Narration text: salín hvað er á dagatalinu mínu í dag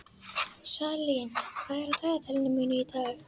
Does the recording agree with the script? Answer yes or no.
yes